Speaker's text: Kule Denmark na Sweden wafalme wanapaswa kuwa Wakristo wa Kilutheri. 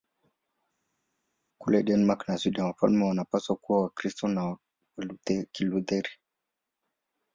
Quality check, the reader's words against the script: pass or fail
pass